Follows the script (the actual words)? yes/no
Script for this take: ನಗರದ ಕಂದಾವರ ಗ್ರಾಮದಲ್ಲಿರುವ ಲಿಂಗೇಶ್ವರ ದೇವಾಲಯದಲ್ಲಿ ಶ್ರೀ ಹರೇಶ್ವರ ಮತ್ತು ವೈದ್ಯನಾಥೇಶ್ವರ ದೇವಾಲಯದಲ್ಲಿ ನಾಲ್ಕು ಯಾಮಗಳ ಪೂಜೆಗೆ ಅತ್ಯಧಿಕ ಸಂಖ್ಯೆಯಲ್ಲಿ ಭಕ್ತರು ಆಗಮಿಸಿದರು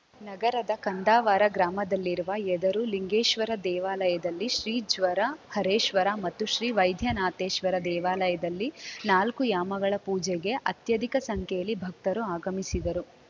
no